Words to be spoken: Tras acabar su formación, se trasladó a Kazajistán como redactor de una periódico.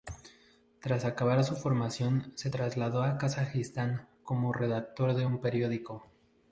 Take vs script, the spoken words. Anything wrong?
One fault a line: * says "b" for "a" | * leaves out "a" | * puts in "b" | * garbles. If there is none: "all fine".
* says "un" for "una"